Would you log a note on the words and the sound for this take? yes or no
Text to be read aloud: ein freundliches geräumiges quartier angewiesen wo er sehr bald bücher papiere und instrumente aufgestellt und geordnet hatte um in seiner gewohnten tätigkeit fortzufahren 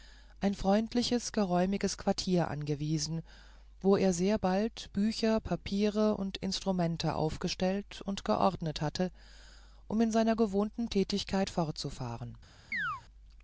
yes